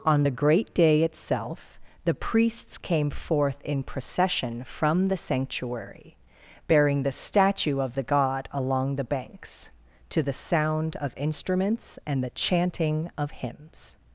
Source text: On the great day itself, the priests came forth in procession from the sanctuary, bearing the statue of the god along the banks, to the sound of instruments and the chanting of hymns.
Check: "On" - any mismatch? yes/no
no